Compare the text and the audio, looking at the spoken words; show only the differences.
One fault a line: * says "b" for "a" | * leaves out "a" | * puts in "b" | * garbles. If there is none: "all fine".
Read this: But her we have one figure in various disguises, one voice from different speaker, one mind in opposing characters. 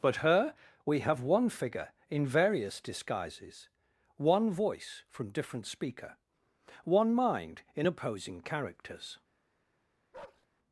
all fine